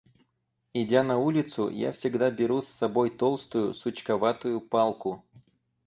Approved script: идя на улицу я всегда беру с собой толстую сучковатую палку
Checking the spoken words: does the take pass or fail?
pass